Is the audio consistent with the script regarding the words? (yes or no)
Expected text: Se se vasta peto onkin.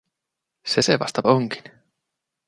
no